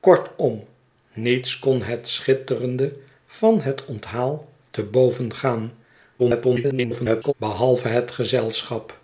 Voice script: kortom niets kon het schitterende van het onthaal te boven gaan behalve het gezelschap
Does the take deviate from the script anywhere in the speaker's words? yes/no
yes